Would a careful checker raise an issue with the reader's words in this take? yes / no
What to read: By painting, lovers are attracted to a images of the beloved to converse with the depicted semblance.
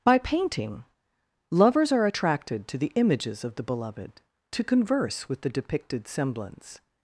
yes